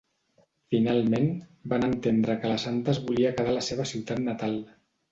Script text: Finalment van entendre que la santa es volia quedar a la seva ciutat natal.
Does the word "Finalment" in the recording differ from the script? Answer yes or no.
no